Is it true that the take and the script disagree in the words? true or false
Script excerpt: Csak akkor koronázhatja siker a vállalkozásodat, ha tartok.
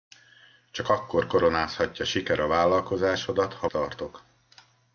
false